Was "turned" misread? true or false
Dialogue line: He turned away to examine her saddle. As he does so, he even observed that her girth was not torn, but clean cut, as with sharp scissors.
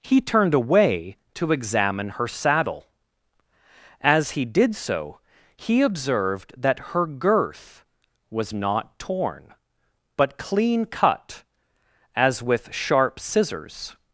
false